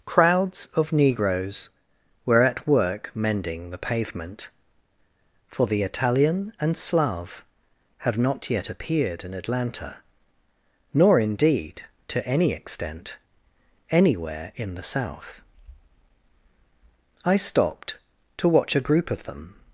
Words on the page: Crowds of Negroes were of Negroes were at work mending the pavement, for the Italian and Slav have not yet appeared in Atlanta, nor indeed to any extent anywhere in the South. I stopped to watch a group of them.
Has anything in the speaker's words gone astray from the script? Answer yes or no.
yes